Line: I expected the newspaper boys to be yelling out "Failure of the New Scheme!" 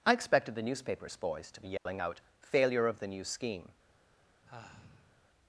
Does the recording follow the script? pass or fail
fail